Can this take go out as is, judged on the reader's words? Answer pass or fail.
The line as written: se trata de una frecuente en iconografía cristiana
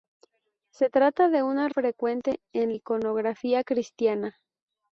pass